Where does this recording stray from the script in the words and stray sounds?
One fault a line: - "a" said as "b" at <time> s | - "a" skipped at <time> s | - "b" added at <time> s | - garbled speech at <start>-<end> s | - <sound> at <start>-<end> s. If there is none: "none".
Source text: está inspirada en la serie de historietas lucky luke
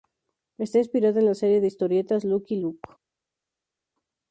none